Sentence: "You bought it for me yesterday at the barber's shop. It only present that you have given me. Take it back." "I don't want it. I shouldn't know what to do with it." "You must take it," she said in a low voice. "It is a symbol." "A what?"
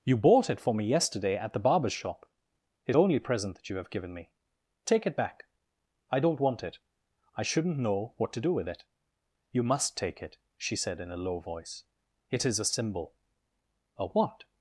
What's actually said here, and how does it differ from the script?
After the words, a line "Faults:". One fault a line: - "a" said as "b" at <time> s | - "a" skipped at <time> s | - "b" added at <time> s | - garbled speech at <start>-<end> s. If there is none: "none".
"You bought it for me yesterday at the barber's shop. It only present that you have given me. Take it back." "I don't want it. I shouldn't know what to do with it." "You must take it," she said in a low voice. "It is a symbol." "A what?"
Faults:
none